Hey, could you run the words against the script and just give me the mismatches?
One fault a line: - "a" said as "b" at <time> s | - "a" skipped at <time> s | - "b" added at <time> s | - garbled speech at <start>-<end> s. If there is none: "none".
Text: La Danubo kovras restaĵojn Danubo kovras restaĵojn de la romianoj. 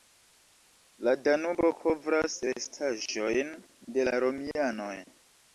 - "Danubo kovras restaĵojn" skipped at 3.5 s